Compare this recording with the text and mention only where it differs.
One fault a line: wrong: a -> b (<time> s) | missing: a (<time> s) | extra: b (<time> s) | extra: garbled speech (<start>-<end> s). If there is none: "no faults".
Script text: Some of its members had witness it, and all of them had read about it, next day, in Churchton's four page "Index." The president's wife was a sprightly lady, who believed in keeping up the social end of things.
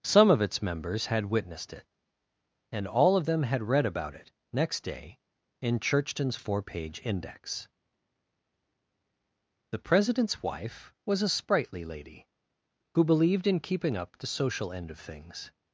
wrong: witness -> witnessed (1.2 s)